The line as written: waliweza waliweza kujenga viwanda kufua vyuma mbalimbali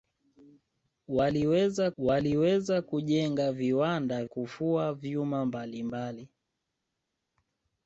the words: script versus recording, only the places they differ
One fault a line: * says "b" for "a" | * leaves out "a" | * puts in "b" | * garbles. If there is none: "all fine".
all fine